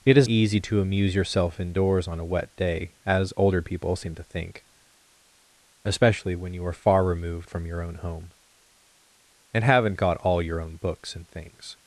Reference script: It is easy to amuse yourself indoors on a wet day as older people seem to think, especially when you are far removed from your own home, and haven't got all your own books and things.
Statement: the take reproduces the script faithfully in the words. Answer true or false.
true